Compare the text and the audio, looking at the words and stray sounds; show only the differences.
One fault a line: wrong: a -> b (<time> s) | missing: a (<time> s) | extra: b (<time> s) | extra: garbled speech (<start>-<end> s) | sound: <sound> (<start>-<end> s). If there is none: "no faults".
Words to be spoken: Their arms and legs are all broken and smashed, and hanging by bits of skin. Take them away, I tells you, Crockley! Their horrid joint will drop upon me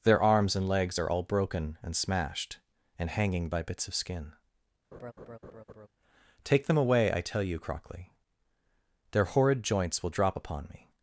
sound: laugh (4.9-5.9 s)
wrong: tells -> tell (7.2 s)
wrong: joint -> joints (9.6 s)